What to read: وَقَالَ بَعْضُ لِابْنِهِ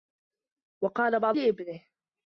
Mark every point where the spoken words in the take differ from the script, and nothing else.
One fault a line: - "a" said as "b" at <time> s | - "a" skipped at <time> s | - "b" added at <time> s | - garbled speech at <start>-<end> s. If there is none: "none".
none